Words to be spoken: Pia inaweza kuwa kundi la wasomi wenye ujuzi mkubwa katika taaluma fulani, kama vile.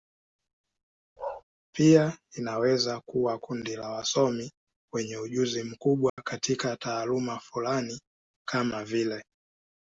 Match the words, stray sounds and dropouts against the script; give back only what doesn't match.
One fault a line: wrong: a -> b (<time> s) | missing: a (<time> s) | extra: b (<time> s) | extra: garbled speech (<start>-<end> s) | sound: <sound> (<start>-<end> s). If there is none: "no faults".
sound: bark (1.2-1.4 s)
sound: dropout (6.1-6.2 s)